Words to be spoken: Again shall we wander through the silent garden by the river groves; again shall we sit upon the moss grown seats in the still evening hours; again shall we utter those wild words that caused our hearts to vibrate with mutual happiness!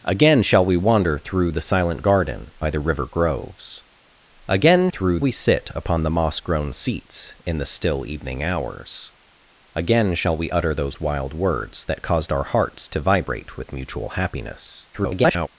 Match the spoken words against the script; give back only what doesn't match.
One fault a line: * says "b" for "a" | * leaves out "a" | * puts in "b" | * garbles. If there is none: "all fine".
* says "through" for "shall"
* garbles